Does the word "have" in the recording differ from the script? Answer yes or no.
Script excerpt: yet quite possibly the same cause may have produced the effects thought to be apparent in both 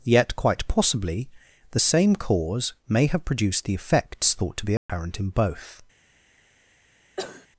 no